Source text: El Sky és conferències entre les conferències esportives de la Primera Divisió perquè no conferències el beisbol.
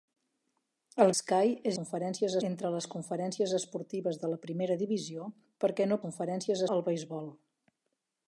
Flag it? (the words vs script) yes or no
no